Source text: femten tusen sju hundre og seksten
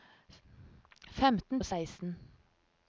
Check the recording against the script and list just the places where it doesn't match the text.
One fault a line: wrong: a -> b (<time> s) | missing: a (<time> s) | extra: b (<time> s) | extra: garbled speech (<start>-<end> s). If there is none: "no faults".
missing: tusen sju hundre (1.6 s)